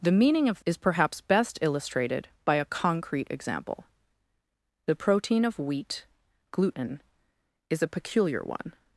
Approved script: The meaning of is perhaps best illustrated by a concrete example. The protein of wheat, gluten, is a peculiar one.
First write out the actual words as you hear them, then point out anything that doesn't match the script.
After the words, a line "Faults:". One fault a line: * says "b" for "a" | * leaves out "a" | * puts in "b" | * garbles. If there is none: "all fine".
The meaning of is perhaps best illustrated by a concrete example. The protein of wheat, gluten, is a peculiar one.
Faults:
all fine